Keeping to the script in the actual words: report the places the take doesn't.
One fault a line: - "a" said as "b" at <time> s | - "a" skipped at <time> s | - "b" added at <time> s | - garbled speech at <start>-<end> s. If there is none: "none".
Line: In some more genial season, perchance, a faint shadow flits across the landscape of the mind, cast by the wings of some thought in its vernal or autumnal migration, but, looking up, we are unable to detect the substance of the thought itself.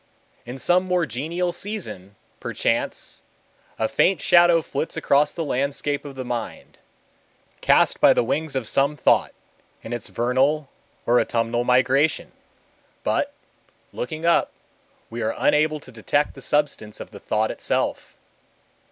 none